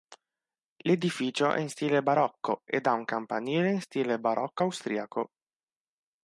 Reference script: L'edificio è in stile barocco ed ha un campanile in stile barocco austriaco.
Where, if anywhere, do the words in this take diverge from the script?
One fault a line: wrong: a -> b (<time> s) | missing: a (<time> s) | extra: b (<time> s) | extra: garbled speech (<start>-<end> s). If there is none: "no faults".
no faults